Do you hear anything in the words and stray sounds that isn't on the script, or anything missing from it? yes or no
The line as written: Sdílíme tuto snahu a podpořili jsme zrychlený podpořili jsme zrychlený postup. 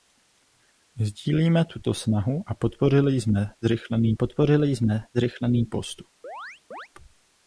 yes